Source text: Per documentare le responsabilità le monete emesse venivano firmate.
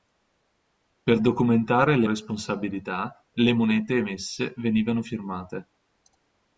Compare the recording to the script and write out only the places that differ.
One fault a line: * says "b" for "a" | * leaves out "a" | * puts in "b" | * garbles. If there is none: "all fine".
all fine